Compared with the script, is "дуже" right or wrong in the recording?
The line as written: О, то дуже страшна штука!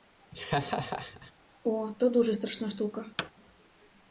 right